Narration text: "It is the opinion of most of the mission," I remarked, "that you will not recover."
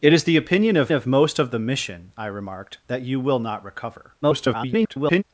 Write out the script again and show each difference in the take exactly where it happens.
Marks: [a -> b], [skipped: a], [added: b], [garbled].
"It is the opinion of [added: of] most of the mission," I remarked, "that you will not recover." [garbled]